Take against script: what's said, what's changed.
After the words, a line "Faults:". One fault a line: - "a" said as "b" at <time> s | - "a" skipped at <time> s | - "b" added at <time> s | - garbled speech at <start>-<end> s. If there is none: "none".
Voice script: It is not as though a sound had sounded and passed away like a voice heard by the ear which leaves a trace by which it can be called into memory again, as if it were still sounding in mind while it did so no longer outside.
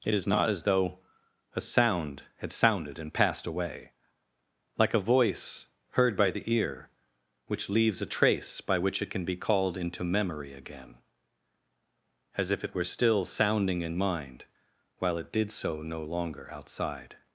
It is not as though a sound had sounded and passed away like a voice heard by the ear which leaves a trace by which it can be called into memory again, as if it were still sounding in mind while it did so no longer outside.
Faults:
none